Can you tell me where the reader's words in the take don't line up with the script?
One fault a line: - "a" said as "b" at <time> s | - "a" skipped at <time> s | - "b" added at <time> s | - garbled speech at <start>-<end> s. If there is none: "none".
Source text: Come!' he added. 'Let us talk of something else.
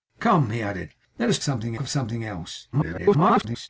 - "talk" said as "something" at 1.4 s
- garbled speech at 2.7-3.7 s